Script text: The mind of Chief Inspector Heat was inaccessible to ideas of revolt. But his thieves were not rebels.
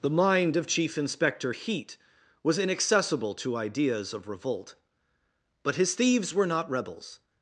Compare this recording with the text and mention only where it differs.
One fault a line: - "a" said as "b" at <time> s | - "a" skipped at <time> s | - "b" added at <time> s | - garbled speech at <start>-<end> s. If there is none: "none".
none